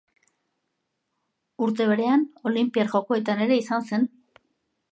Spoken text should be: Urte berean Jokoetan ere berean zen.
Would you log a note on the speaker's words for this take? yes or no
yes